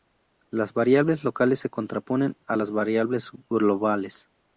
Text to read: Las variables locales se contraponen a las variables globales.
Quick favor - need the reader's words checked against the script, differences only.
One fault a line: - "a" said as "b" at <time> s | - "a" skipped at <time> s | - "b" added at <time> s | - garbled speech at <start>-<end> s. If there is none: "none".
none